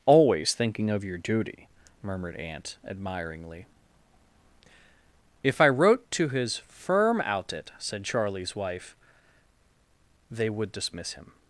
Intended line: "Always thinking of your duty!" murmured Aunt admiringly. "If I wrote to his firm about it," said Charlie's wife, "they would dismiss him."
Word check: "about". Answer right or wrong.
wrong